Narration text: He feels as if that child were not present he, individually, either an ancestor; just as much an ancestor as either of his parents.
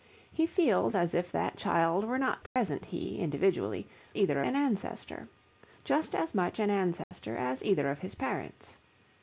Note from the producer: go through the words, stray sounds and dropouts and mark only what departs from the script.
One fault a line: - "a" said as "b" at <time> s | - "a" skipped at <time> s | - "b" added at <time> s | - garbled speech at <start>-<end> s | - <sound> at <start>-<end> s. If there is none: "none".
- dropout at 2.5-2.6 s
- dropout at 7.0-7.1 s